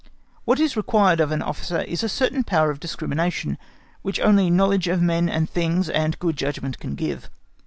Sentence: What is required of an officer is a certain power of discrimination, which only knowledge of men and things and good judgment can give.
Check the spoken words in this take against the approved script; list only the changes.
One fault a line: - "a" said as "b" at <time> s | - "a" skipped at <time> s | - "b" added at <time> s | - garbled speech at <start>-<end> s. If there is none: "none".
none